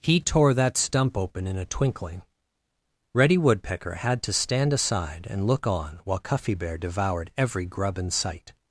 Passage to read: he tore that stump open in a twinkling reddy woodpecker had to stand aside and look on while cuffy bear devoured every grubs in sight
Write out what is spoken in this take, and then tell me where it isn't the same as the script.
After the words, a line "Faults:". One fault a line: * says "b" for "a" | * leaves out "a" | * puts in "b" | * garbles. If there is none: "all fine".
he tore that stump open in a twinkling reddy woodpecker had to stand aside and look on while cuffy bear devoured every grub in sight
Faults:
* says "grub" for "grubs"